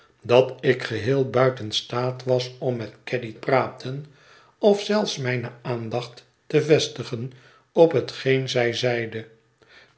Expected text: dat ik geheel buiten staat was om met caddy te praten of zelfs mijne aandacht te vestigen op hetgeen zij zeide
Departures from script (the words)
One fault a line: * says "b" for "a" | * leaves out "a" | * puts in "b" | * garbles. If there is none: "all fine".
* leaves out "te"